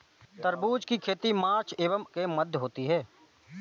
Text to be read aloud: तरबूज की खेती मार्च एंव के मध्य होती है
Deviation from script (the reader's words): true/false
false